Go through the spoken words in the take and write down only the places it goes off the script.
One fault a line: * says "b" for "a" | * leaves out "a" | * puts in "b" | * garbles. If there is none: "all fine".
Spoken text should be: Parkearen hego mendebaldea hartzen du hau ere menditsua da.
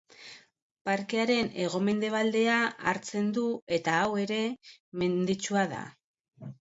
* puts in "eta"